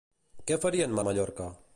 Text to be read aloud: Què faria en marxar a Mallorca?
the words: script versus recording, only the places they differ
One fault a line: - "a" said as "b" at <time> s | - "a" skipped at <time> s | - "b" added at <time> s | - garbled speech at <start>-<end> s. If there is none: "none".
- "marxar" skipped at 1.0 s